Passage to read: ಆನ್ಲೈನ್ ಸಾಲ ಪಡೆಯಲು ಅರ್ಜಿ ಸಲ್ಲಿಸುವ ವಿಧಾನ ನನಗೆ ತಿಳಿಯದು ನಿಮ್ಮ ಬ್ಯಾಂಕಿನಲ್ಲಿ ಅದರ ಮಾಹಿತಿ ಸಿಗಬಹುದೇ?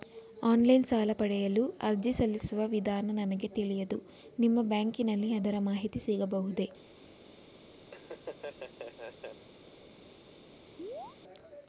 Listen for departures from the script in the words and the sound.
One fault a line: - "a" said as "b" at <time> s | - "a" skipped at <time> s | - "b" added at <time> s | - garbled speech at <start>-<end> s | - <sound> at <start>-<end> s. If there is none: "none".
- laugh at 7.8-9.4 s
- chirp at 10.8-11.2 s